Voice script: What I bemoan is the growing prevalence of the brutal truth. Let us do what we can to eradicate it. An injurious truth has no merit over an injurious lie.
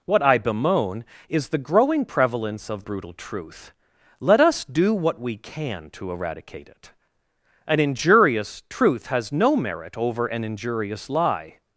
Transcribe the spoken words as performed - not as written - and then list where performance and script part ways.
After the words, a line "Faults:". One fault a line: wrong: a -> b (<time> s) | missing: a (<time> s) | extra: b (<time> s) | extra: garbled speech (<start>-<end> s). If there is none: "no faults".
What I bemoan is the growing prevalence of brutal truth. Let us do what we can to eradicate it. An injurious truth has no merit over an injurious lie.
Faults:
missing: the (2.8 s)